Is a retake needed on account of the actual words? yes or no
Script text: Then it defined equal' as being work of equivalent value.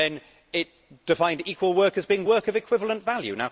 yes